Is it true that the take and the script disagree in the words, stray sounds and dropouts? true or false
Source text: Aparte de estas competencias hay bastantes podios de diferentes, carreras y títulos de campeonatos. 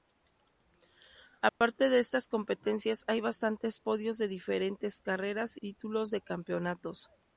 true